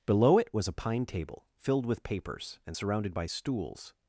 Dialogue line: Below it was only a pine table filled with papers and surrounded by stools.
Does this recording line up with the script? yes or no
no